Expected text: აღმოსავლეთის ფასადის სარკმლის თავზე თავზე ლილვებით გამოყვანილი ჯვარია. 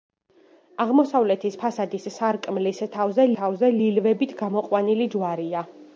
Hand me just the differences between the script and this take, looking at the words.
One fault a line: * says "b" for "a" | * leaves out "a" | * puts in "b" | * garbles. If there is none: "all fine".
all fine